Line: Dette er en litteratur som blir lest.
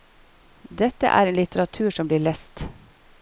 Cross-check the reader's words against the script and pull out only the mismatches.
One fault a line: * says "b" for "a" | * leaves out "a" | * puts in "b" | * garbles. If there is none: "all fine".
all fine